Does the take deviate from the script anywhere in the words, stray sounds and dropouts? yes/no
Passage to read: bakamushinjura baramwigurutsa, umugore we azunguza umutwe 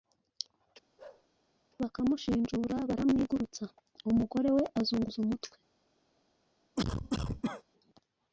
yes